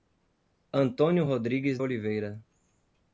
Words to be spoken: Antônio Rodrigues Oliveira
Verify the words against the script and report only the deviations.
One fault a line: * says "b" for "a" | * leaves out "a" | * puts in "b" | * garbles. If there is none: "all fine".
all fine